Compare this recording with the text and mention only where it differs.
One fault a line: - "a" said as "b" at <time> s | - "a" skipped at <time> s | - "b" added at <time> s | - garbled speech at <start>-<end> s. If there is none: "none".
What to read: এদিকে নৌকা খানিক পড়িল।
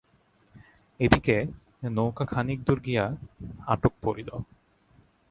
- "দূর গিয়া আটক" added at 2.6 s